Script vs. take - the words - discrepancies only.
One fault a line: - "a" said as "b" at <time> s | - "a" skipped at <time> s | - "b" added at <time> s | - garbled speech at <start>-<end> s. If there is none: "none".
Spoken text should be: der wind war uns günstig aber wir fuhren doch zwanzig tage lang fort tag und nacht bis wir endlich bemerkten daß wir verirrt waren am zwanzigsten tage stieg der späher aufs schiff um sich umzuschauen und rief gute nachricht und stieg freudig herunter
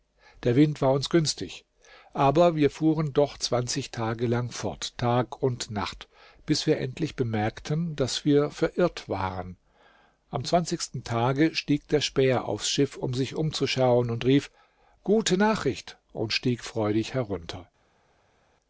none